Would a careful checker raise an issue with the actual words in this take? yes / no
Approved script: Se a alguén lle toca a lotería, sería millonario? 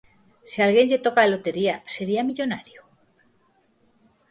no